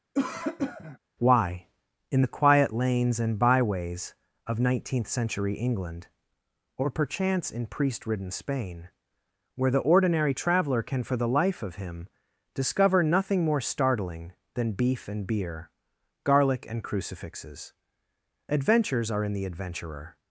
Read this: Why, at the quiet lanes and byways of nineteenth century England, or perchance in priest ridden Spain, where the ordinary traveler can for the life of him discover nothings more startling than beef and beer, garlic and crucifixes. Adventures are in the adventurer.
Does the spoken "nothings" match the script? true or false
false